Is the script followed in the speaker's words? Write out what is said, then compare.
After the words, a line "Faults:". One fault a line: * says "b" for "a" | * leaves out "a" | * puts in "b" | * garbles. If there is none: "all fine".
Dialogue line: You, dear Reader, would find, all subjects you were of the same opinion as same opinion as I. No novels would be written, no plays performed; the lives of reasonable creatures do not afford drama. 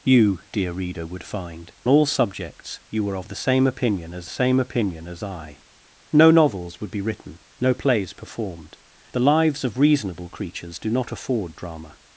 You, dear Reader, would find, all subjects you were of the same opinion as same opinion as I. No novels would be written, no plays performed; the lives of reasonable creatures do not afford drama.
Faults:
all fine